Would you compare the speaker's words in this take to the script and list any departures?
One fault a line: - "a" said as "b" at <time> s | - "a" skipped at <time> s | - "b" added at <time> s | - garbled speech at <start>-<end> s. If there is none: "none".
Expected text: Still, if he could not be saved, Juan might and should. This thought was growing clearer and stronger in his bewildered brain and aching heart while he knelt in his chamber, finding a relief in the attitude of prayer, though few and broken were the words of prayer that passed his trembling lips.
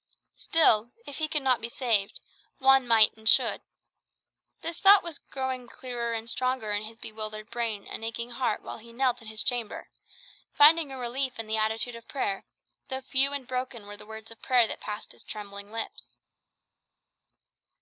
none